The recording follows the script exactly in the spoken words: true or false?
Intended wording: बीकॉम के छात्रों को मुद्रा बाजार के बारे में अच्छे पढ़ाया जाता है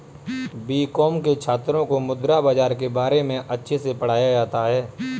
false